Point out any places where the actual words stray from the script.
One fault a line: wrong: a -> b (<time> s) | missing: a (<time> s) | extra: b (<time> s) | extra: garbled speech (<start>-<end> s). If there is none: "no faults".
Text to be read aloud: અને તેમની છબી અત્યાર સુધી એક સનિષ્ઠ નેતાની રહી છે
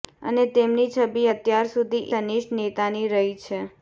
missing: એક (2.0 s)